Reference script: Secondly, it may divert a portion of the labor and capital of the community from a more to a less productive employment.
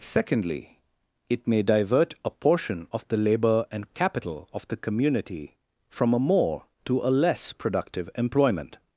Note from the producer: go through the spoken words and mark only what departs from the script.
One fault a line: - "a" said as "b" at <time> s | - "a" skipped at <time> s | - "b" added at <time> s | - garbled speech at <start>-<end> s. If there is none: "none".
none